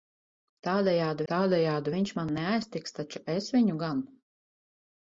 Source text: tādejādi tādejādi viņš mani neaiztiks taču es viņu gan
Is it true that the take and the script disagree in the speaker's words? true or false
false